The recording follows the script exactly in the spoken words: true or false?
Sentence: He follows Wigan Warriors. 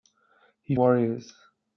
false